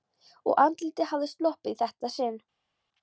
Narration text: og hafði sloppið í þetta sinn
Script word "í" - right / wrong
right